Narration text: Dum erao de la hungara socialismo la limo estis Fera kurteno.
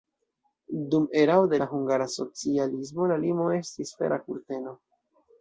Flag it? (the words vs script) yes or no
no